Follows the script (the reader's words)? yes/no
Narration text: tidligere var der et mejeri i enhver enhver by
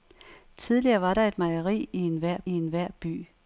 yes